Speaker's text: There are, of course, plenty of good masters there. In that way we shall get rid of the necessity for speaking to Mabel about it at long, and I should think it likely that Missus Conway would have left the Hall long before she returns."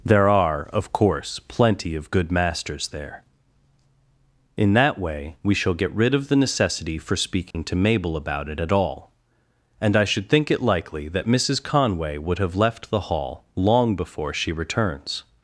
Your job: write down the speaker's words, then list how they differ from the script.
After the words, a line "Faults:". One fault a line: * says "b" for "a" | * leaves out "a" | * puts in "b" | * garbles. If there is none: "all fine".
There are, of course, plenty of good masters there. In that way we shall get rid of the necessity for speaking to Mabel about it at all, and I should think it likely that Missus Conway would have left the Hall long before she returns."
Faults:
* says "all" for "long"